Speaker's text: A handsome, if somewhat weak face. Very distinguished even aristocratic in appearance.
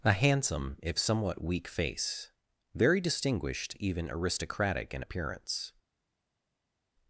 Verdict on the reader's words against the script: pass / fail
pass